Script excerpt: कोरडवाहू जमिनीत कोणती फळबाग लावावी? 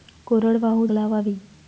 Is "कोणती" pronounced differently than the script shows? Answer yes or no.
yes